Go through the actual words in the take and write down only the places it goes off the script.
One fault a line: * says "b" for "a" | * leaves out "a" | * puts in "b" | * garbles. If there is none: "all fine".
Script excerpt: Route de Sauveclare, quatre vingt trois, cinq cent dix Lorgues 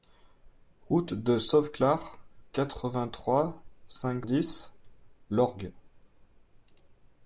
* leaves out "cent"